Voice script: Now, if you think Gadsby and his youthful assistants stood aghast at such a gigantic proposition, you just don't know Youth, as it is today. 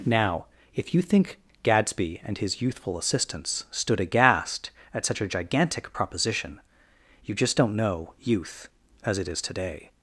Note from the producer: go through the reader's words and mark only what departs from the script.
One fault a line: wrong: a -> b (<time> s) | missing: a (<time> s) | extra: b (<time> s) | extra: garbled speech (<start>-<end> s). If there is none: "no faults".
no faults